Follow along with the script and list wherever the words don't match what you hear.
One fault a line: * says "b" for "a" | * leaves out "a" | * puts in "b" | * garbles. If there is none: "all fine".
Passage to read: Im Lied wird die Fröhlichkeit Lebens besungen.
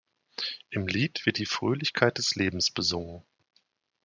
* puts in "des"